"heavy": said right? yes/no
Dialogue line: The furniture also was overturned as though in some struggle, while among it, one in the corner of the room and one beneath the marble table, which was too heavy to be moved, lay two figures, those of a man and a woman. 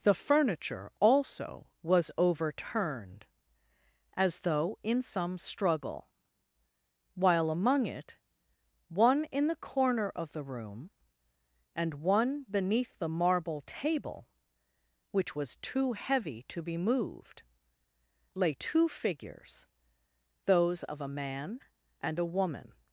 yes